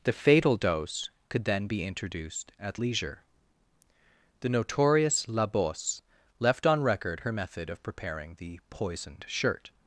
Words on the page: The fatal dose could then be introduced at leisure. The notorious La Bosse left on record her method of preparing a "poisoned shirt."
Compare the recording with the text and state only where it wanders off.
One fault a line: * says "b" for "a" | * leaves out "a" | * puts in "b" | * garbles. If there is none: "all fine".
* says "the" for "a"